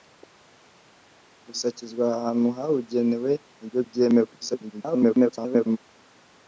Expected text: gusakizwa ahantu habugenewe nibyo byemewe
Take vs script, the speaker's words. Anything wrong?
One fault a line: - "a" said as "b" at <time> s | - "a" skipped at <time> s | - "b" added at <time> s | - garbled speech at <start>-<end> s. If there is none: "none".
- garbled speech at 4.4-5.8 s